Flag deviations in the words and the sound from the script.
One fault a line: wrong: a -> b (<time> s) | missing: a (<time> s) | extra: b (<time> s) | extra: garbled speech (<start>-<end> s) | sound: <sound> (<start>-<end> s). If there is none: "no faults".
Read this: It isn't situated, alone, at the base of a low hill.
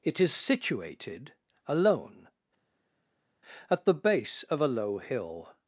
wrong: isn't -> is (0.2 s)